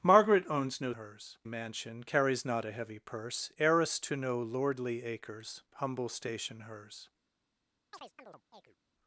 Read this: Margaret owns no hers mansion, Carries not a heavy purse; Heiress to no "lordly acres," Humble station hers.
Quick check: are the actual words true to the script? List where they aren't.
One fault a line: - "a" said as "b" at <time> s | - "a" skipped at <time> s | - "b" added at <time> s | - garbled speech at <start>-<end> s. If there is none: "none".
none